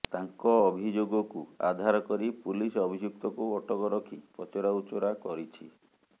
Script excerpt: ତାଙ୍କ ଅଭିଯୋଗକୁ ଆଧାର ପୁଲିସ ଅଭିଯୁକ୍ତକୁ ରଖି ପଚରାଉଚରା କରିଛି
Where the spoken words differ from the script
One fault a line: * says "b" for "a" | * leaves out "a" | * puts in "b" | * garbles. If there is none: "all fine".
* puts in "କରି"
* puts in "ଅଟକ"